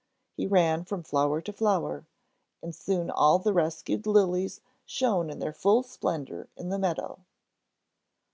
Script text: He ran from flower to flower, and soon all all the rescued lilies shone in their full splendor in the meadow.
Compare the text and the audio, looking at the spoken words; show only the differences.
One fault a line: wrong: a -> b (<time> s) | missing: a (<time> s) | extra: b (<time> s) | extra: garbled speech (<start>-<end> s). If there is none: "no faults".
missing: all (3.4 s)